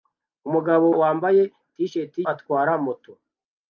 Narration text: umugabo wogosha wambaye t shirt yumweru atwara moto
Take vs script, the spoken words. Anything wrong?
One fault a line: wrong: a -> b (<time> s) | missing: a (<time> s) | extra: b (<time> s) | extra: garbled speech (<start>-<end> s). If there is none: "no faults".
missing: wogosha (0.8 s)
missing: yumweru (2.1 s)